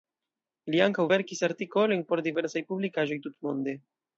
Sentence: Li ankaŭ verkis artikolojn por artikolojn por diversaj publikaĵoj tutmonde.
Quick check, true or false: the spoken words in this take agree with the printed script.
false